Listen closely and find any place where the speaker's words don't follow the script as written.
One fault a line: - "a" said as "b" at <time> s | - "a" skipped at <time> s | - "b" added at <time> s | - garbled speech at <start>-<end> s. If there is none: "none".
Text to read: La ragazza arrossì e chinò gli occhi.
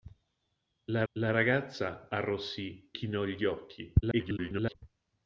- "la" added at 1.1 s
- "e" skipped at 2.9 s
- garbled speech at 4.0-4.8 s